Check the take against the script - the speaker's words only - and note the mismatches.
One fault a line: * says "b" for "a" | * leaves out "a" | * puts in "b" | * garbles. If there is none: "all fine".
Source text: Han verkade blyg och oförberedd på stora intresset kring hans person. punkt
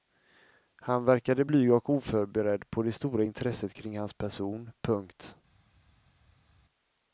* puts in "det"